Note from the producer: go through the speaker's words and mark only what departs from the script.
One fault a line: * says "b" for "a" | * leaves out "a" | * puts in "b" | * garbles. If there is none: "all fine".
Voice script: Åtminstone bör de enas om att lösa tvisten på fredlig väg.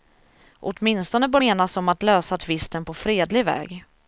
* leaves out "de"